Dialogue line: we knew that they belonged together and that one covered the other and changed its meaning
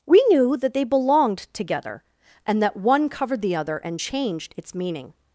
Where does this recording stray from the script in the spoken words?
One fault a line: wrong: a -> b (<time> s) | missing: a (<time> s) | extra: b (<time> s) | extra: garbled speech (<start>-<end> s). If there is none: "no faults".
no faults